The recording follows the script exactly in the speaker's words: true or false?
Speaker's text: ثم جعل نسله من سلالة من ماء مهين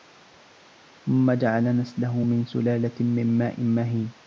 true